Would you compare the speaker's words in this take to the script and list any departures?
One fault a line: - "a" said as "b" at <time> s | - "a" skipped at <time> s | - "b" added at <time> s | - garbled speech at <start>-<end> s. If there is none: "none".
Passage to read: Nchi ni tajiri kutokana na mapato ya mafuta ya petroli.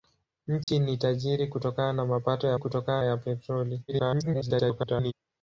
- "mafuta" said as "kutokana" at 2.6 s
- garbled speech at 3.9-5.1 s